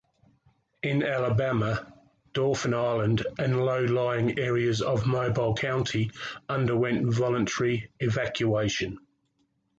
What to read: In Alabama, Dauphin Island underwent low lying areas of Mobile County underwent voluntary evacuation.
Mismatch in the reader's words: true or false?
true